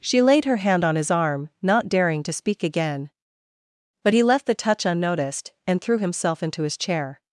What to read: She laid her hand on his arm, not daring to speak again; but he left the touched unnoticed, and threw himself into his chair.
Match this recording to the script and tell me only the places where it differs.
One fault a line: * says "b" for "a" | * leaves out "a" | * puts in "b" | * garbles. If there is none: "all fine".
* says "touch" for "touched"